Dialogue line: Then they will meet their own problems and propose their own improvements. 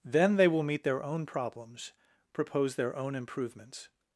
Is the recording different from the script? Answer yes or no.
yes